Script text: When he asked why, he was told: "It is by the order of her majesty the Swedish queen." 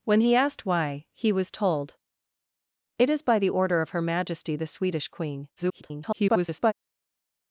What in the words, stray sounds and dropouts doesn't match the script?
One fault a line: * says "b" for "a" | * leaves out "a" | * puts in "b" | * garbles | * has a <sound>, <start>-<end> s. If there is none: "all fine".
* garbles